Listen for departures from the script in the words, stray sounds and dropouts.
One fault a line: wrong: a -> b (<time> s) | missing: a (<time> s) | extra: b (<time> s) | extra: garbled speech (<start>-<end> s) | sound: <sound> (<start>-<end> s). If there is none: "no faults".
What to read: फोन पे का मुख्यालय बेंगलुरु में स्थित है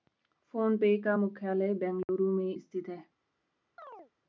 sound: dropout (2.0-2.1 s)
sound: chirp (3.8-4.1 s)